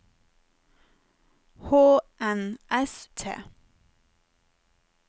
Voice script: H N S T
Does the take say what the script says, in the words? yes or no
yes